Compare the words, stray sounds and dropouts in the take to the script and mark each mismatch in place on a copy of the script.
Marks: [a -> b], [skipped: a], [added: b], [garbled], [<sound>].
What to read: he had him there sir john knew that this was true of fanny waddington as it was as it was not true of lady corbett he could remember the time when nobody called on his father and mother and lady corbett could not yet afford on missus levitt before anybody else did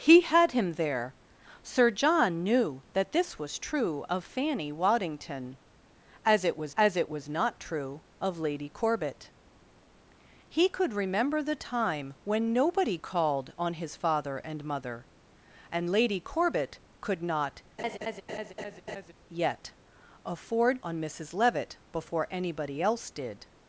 he had him there sir john knew that this was true of fanny waddington as it was as it was not true of lady corbett he could remember the time when nobody called on his father and mother and lady corbett could not [laugh] yet afford on missus levitt before anybody else did